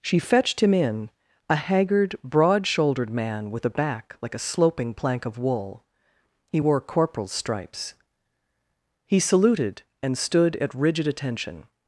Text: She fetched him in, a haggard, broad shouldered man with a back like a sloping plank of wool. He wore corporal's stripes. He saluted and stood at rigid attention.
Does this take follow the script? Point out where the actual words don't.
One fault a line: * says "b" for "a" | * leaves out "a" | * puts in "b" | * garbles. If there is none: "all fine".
all fine